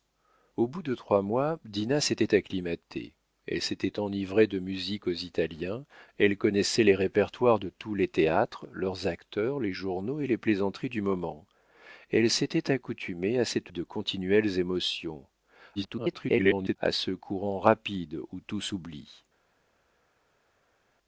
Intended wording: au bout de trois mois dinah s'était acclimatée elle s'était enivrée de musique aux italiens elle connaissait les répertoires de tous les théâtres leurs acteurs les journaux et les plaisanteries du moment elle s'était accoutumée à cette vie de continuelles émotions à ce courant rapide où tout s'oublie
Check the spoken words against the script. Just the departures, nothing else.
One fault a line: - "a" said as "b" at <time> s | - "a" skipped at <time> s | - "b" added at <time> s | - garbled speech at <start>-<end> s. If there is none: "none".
- "vie" skipped at 13.7 s
- garbled speech at 15.8-16.8 s